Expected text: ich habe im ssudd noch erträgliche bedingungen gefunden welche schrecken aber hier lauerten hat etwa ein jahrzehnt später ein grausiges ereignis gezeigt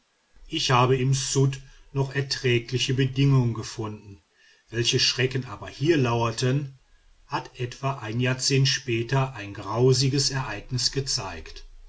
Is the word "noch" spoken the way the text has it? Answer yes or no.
yes